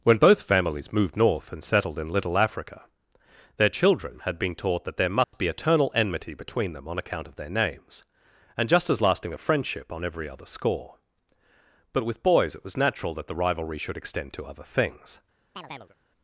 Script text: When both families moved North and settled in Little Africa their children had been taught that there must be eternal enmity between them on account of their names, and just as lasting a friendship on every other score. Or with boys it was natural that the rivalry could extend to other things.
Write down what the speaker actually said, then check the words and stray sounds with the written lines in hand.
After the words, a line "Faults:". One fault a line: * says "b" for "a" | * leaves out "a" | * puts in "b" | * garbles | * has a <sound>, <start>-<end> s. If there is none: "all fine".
When both families moved North and settled in Little Africa their children had been taught that there must be eternal enmity between them on account of their names, and just as lasting a friendship on every other score. But with boys it was natural that the rivalry should extend to other things.
Faults:
* has a dropout, 5.2-5.3 s
* says "But" for "Or"
* says "should" for "could"
* has a chirp, 15.5-16.0 s